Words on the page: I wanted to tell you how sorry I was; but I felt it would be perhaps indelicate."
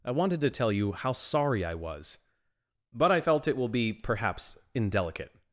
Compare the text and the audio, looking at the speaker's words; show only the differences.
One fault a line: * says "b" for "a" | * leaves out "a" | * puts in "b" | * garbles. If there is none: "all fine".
* says "will" for "would"